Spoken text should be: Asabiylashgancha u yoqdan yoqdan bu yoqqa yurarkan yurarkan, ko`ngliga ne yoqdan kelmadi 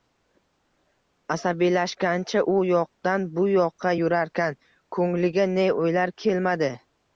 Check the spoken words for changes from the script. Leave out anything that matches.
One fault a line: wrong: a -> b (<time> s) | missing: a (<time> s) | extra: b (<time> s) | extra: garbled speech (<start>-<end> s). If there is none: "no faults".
missing: yoqdan (3.3 s)
missing: yurarkan (4.6 s)
wrong: yoqdan -> o`ylar (5.9 s)